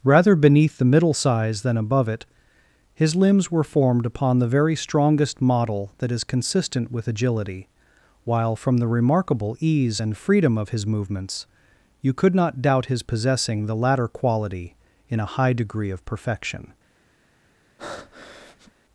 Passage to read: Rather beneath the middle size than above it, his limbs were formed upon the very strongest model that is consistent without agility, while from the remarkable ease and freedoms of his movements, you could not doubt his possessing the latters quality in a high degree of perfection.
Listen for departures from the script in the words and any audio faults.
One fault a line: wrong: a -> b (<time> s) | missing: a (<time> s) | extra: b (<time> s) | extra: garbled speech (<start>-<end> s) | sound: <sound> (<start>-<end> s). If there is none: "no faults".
wrong: without -> with (6.9 s)
wrong: freedoms -> freedom (10.2 s)
wrong: latters -> latter (13.8 s)
sound: breath (17.8-18.7 s)